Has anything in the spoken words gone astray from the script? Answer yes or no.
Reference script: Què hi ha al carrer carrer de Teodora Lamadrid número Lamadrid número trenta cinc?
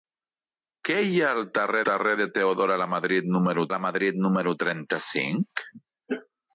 no